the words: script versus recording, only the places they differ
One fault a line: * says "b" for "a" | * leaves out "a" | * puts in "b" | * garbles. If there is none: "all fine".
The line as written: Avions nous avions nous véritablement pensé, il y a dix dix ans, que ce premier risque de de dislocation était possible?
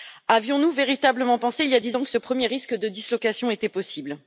* leaves out "avions nous"
* leaves out "dix"
* leaves out "de"